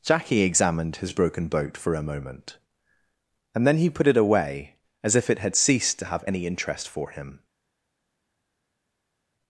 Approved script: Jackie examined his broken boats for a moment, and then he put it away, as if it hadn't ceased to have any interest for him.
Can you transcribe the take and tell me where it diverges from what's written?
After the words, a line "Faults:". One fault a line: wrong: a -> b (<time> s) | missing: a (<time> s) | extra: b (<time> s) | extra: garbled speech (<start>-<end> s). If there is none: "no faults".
Jackie examined his broken boat for a moment, and then he put it away, as if it had ceased to have any interest for him.
Faults:
wrong: boats -> boat (1.5 s)
wrong: hadn't -> had (5.4 s)